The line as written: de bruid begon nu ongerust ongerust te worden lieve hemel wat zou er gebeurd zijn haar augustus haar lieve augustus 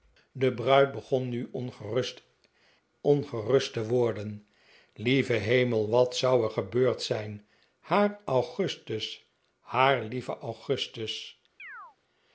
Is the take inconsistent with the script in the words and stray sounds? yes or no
yes